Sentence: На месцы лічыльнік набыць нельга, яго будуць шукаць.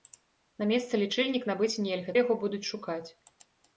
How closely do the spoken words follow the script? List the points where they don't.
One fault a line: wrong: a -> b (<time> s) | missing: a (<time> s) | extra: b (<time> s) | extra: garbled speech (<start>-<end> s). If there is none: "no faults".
no faults